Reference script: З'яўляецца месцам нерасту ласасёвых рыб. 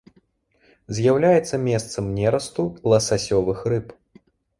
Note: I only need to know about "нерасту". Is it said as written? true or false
true